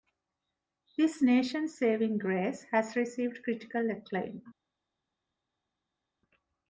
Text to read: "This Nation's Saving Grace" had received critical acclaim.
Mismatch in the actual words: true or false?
true